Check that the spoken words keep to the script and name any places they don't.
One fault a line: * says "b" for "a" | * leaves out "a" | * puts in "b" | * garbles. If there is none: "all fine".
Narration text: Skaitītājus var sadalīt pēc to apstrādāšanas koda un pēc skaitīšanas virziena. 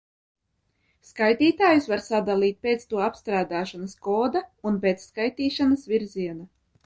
all fine